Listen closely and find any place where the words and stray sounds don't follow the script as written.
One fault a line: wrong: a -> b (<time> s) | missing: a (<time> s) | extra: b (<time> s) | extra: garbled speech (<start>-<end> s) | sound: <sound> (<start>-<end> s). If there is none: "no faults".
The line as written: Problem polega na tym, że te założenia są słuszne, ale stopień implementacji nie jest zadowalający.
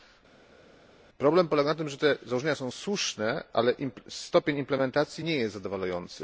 no faults